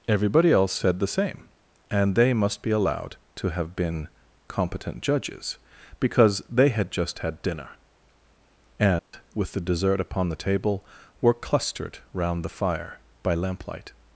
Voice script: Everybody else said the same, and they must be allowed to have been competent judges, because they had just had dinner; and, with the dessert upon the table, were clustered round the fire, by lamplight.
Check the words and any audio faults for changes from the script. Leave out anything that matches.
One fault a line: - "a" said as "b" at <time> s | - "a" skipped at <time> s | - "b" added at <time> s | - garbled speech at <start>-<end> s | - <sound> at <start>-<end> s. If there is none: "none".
- dropout at 9.0-9.1 s